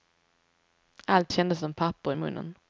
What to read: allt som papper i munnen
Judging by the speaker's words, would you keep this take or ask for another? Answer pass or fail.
fail